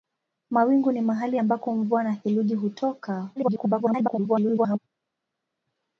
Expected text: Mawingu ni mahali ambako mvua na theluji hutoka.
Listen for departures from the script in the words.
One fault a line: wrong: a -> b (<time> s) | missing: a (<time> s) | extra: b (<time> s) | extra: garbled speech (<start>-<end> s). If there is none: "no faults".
extra: garbled speech (3.4-4.8 s)